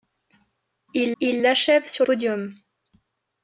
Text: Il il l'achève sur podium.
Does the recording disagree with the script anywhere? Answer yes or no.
no